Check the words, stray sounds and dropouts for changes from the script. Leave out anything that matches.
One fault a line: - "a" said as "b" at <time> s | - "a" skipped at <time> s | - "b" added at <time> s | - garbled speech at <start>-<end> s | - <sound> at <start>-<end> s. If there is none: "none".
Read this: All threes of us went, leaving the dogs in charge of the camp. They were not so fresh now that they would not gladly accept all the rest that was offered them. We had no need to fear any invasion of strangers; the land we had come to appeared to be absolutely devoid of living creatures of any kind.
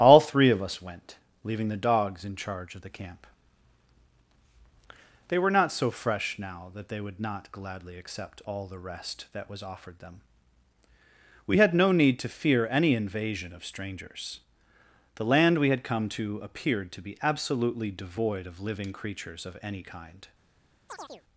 - "threes" said as "three" at 0.2 s
- chirp at 20.9-21.2 s